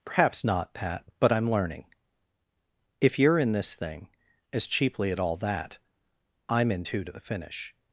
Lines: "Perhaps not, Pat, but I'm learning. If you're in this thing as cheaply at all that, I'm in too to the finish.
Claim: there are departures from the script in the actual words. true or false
false